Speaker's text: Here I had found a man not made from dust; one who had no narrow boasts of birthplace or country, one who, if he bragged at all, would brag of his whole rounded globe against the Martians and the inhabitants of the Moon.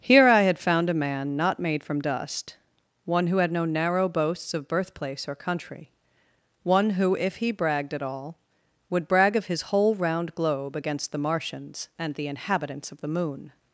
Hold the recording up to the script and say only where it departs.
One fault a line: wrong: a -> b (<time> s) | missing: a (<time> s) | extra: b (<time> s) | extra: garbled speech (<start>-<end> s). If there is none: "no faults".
wrong: rounded -> round (10.0 s)